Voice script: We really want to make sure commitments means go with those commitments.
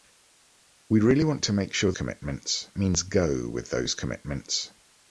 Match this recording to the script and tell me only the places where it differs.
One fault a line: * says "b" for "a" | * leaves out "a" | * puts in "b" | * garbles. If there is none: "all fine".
all fine